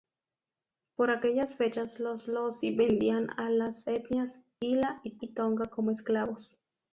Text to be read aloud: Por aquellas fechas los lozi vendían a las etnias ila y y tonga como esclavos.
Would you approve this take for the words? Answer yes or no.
yes